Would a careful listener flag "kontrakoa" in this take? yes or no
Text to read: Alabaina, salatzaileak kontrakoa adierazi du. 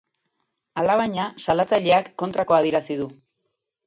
no